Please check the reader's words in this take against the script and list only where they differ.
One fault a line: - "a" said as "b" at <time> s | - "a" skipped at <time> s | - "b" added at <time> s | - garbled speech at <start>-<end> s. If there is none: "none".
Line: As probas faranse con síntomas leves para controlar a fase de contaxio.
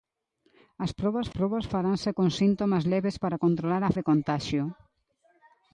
- "probas" added at 1.4 s
- "fase" skipped at 3.9 s